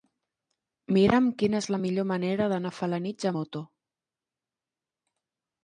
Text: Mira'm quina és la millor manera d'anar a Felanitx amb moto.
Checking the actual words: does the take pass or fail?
fail